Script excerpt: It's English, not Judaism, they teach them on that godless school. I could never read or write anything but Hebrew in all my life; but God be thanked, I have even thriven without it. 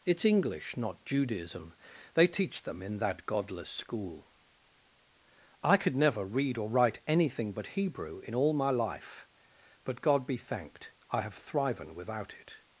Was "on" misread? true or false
true